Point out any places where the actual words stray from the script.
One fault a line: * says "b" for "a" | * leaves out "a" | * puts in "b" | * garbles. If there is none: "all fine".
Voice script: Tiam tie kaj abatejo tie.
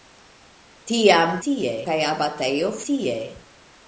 all fine